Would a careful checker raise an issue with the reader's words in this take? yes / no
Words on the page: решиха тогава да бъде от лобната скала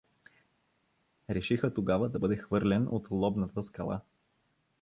yes